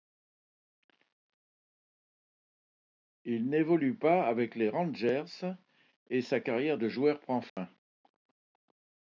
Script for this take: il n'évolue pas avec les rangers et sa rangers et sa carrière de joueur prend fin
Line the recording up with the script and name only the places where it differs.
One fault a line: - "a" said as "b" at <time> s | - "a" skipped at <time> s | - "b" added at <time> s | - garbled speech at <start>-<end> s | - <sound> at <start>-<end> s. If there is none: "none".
- "rangers et sa" skipped at 6.4 s
- dropout at 7.5-7.6 s